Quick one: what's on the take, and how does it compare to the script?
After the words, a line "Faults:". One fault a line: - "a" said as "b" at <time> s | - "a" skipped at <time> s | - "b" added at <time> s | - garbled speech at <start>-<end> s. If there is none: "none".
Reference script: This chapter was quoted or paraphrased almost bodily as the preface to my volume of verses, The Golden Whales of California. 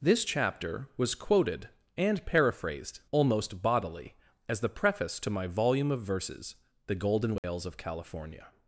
This chapter was quoted and paraphrased almost bodily as the preface to my volume of verses, The Golden Whales of California.
Faults:
- "or" said as "and" at 2.0 s